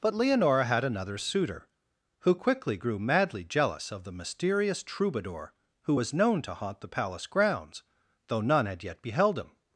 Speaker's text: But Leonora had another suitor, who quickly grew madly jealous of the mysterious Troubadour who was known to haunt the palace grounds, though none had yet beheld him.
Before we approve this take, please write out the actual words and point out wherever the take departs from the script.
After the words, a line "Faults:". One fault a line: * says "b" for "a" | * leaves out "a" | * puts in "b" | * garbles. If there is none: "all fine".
But Leonora had another suitor, who quickly grew madly jealous of the mysterious Troubadour who was known to haunt the palace grounds, though none had yet beheld him.
Faults:
all fine